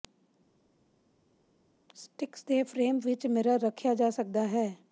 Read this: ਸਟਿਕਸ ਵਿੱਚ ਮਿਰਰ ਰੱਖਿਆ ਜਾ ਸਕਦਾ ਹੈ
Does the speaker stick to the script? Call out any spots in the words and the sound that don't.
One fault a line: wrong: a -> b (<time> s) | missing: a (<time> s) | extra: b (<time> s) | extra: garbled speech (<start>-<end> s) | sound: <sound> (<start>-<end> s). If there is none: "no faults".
extra: ਦੇ ਫਰੇਮ (2.4 s)